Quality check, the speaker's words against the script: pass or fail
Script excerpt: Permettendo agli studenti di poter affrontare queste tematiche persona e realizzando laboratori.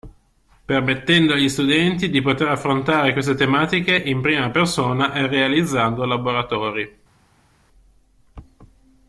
fail